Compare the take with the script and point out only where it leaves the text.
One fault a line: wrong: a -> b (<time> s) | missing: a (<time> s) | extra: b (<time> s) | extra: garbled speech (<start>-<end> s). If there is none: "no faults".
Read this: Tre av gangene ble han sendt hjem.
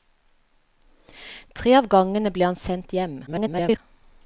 extra: garbled speech (3.3-3.8 s)